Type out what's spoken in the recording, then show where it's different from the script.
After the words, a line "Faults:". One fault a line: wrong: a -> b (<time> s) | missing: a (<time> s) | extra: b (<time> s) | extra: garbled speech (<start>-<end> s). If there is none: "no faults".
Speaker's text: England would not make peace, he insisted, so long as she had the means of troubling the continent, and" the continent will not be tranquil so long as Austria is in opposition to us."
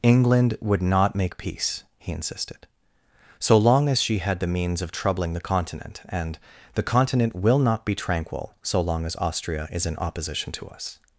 England would not make peace, he insisted, so long as she had the means of troubling the continent, and" the continent will not be tranquil so long as Austria is in opposition to us."
Faults:
no faults